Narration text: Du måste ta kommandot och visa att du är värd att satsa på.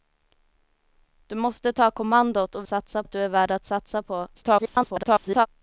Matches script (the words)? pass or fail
fail